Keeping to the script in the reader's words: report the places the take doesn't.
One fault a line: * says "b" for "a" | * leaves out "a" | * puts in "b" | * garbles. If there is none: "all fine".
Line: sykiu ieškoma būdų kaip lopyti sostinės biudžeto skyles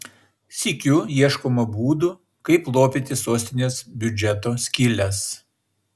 all fine